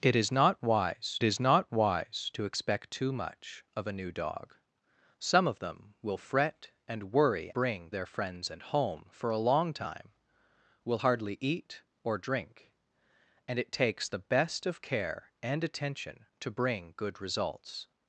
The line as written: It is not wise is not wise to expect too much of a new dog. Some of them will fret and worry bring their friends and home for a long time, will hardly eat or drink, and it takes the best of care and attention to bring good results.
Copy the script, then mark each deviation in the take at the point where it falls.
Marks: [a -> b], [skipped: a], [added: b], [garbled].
It is not wise is not wise to expect too much of a new dog. Some of them will fret and worry bring their friends and home for a long time, will hardly eat or drink, and it takes the best of care and attention to bring good results.